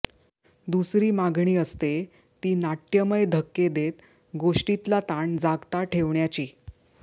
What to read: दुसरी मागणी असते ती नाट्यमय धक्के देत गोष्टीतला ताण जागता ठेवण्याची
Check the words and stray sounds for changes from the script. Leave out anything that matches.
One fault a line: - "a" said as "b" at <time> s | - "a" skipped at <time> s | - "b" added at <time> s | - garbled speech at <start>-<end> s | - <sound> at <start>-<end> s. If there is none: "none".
none